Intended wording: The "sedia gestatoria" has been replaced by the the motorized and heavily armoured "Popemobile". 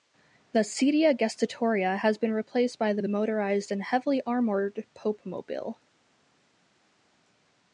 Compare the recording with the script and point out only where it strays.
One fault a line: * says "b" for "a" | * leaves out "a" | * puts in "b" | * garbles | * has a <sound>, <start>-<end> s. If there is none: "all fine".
all fine